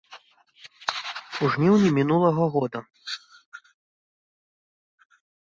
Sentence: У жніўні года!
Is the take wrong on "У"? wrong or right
right